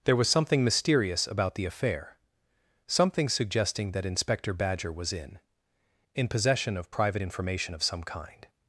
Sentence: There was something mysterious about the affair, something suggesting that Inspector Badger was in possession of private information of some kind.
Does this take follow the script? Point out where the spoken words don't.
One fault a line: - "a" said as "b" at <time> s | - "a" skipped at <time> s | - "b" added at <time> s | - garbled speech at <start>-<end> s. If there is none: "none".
- "in" added at 6.2 s